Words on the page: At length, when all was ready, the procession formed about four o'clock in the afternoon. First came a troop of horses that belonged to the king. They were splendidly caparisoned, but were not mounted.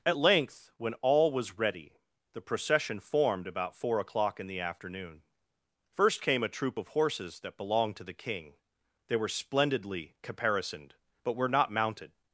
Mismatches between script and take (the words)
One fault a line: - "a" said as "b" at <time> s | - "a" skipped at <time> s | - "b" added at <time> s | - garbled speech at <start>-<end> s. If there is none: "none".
none